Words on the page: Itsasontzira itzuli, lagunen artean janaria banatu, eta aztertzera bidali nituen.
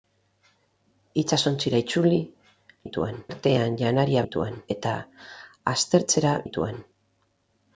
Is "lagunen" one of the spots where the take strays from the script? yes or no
yes